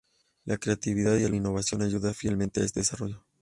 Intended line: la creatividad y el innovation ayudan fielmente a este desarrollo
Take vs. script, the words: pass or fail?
pass